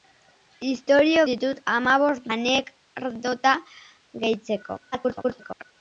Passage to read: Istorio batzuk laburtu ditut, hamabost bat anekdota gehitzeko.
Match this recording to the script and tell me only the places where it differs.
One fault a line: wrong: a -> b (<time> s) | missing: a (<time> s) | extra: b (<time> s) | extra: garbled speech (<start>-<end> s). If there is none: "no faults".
missing: batzuk laburtu (1.2 s)
missing: bat (2.3 s)
extra: garbled speech (4.9-5.6 s)